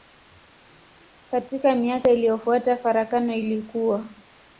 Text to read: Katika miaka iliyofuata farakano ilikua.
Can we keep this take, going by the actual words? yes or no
yes